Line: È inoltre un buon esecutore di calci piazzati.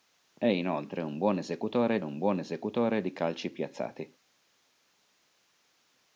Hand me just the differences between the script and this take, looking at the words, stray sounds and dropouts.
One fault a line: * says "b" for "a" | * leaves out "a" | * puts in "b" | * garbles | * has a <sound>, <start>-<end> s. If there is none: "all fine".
* puts in "un buon esecutore"